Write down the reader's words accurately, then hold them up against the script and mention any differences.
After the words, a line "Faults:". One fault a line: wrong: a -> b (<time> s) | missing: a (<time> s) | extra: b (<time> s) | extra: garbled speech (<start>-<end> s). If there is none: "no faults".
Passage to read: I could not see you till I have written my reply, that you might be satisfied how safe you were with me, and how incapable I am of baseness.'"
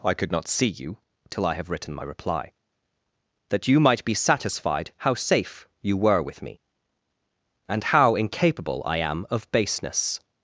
I could not see you till I have written my reply, that you might be satisfied how safe you were with me, and how incapable I am of baseness.'"
Faults:
no faults